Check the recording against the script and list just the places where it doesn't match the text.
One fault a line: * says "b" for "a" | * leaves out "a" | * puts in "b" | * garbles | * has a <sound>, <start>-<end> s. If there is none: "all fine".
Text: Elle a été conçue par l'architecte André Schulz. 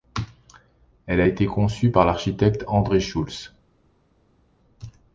all fine